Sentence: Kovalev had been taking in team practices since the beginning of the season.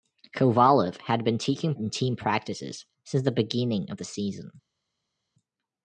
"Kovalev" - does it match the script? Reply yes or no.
yes